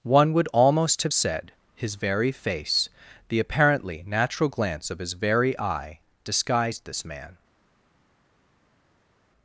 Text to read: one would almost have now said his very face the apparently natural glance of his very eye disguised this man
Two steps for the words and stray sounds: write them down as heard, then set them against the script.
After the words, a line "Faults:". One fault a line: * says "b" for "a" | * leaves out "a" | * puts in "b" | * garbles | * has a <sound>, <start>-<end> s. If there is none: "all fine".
one would almost have said his very face the apparently natural glance of his very eye disguised this man
Faults:
* leaves out "now"